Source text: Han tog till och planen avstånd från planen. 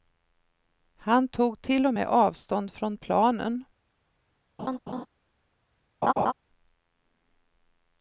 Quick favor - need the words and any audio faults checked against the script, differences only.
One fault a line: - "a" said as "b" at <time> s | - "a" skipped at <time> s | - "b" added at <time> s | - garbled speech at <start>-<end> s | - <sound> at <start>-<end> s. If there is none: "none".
- "planen" said as "med" at 1.9 s
- laugh at 4.6-5.1 s
- laugh at 6.0-6.3 s